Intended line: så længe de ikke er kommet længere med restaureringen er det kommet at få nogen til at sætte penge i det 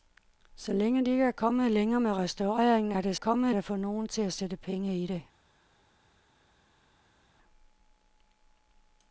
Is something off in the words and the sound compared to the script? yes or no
no